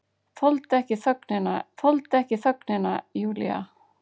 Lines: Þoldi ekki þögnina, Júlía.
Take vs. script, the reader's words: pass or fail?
fail